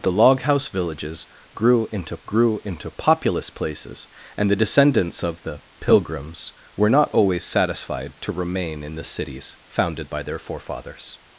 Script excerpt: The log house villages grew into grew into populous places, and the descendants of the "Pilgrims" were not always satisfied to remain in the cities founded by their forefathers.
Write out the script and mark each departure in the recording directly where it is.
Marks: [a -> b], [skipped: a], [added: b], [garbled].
The log house villages grew into grew into populous places, and the descendants of the "Pilgrims" were not always satisfied to remain in the cities founded by their forefathers.